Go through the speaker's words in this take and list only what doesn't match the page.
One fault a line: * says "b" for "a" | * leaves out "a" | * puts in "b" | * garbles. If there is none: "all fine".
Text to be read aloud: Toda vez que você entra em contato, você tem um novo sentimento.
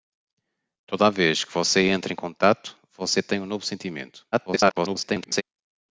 * garbles